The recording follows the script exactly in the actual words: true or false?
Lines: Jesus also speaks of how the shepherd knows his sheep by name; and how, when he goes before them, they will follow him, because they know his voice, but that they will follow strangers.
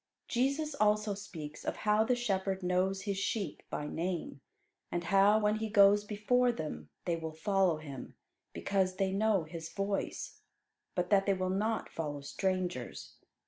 false